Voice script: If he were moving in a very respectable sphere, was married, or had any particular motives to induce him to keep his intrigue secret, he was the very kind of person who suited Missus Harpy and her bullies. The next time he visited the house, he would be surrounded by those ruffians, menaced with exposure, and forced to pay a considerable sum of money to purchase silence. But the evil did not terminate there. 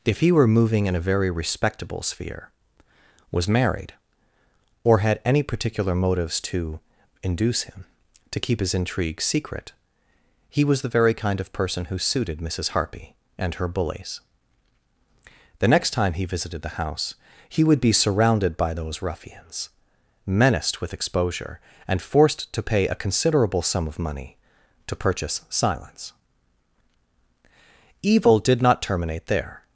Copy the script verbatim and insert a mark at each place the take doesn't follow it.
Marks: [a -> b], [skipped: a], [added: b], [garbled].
If he were moving in a very respectable sphere, was married, or had any particular motives to induce him to keep his intrigue secret, he was the very kind of person who suited Missus Harpy and her bullies. The next time he visited the house, he would be surrounded by those ruffians, menaced with exposure, and forced to pay a considerable sum of money to purchase silence. [skipped: But the] evil did not terminate there.